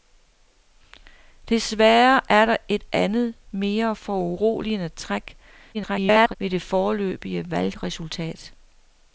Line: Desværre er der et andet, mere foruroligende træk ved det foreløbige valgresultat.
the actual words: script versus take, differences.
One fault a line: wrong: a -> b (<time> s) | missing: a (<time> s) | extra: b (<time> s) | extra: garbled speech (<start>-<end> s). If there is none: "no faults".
extra: garbled speech (5.7-6.4 s)